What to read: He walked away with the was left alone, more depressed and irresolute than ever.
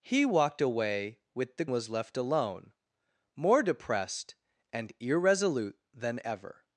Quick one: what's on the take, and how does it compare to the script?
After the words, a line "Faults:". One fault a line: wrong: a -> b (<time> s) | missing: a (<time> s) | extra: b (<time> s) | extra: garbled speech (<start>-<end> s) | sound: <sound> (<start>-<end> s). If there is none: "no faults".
He walked away with the was left alone, more depressed and irresolute than ever.
Faults:
no faults